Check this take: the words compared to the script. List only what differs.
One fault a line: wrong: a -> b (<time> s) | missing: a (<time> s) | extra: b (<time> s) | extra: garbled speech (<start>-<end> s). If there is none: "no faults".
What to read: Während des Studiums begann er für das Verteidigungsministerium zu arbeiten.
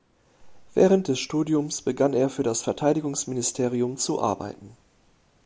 no faults